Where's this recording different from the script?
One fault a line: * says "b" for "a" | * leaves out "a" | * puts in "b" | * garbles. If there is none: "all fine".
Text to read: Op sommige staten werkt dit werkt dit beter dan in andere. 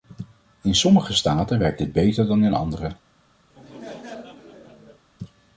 * says "In" for "Op"
* leaves out "werkt dit"